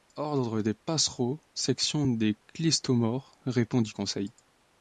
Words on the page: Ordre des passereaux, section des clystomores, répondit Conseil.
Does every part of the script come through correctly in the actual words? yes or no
yes